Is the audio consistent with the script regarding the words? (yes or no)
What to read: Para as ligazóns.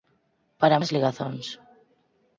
yes